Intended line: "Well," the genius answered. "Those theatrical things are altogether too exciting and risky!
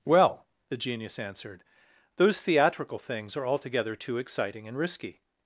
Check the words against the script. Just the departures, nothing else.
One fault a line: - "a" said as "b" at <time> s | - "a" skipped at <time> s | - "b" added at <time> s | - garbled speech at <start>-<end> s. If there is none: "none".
none